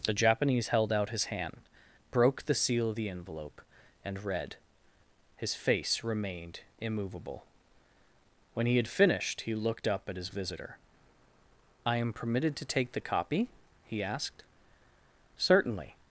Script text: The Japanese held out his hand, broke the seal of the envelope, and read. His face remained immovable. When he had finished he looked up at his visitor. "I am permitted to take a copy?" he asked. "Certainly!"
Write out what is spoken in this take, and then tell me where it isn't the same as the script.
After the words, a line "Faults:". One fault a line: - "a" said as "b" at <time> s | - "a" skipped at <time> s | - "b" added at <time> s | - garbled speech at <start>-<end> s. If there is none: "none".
The Japanese held out his hand, broke the seal of the envelope, and read. His face remained immovable. When he had finished he looked up at his visitor. "I am permitted to take the copy?" he asked. "Certainly!"
Faults:
- "a" said as "the" at 12.9 s